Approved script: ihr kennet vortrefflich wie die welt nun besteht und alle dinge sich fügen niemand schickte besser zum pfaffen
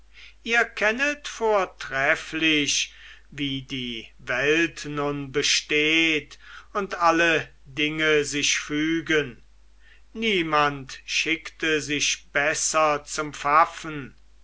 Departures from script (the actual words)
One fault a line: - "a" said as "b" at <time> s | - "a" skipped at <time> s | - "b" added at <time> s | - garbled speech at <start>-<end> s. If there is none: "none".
- "sich" added at 11.8 s